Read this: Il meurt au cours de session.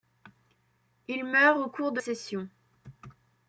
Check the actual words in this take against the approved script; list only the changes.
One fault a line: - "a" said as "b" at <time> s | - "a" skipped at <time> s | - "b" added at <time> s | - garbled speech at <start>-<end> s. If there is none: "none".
none